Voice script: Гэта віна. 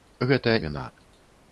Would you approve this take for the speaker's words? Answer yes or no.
yes